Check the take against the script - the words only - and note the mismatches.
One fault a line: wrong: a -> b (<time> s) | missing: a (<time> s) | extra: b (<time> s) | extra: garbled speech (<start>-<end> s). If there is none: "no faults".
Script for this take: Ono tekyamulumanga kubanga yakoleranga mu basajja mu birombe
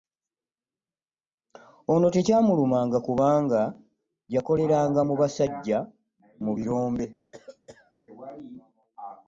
no faults